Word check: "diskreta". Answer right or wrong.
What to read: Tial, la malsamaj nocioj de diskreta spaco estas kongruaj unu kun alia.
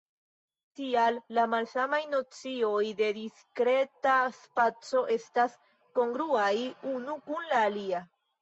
right